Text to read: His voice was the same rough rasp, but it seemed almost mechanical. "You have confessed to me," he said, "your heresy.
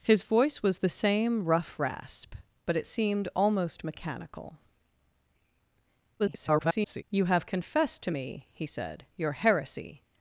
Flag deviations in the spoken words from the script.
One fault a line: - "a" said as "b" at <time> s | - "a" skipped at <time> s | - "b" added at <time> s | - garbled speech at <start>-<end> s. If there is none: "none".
- garbled speech at 6.2-7.0 s